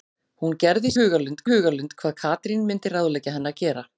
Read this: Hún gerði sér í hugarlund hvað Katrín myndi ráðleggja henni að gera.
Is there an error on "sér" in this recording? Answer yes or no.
yes